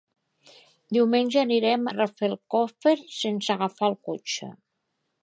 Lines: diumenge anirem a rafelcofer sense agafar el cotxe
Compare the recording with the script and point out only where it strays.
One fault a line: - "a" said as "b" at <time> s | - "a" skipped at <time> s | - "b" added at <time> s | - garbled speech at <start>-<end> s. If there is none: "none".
- "a" skipped at 1.9 s